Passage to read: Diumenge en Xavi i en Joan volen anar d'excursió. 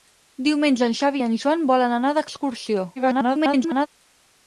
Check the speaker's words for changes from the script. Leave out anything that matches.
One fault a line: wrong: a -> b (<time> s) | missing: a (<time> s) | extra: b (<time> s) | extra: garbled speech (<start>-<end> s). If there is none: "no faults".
extra: garbled speech (3.0-3.9 s)